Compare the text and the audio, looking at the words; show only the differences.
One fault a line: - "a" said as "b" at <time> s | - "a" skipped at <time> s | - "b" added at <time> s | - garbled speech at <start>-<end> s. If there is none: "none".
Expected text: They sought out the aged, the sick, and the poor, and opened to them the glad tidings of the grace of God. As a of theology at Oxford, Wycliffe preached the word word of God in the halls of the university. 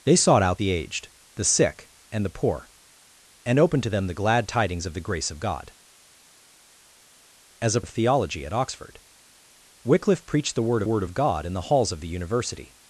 none